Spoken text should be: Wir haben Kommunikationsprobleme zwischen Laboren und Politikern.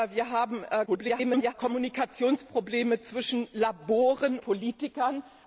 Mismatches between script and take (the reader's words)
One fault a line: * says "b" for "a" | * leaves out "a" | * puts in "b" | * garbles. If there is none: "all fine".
* garbles
* leaves out "und"